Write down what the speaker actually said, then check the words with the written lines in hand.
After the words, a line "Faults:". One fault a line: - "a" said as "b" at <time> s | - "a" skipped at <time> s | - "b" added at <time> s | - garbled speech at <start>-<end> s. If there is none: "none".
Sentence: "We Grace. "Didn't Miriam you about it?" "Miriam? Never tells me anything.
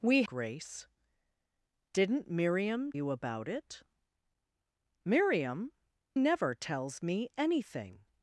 "We Grace. "Didn't Miriam you about it?" "Miriam? Never tells me anything.
Faults:
none